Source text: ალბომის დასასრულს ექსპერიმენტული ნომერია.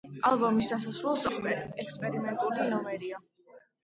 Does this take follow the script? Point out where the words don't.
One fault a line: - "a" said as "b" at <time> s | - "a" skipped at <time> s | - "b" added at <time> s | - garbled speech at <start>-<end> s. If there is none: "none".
none